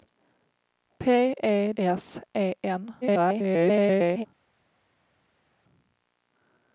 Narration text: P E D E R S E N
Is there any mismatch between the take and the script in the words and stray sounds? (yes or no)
yes